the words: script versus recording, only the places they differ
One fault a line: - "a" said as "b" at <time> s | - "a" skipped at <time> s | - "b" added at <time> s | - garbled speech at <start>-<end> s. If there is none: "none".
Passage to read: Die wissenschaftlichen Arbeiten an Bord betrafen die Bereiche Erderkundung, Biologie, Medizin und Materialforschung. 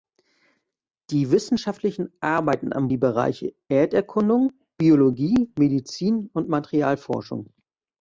- "Bord betrafen" skipped at 2.9 s